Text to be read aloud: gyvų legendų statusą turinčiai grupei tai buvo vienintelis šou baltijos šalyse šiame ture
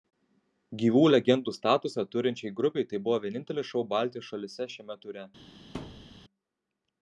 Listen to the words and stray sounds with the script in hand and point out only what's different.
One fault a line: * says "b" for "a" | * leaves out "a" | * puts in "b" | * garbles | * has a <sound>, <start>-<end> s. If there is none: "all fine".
* has a thud, 5.7-6.2 s